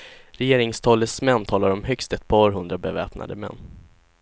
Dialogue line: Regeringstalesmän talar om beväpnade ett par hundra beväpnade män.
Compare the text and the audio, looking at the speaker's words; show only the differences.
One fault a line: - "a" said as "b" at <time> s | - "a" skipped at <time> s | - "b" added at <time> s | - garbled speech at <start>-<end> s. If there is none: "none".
- "beväpnade" said as "högst" at 1.8 s